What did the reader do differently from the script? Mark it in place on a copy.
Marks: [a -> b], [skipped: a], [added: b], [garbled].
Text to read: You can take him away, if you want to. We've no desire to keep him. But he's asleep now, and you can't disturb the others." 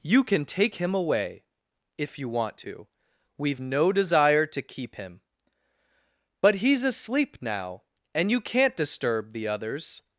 You can take him away, if you want to. We've no desire to keep him. But he's asleep now, and you can't disturb the others."